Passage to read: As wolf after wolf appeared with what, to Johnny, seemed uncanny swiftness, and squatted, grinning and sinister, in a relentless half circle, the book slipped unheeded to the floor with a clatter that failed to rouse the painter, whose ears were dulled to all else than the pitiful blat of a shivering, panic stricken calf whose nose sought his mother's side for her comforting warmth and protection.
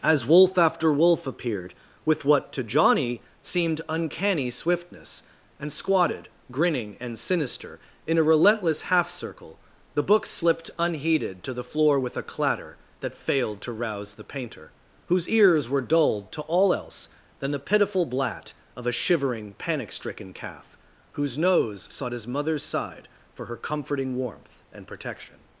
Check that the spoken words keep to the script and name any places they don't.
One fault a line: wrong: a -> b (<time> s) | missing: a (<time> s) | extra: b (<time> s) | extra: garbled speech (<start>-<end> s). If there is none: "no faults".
no faults